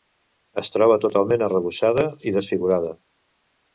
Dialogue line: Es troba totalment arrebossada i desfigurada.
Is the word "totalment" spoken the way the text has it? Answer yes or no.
yes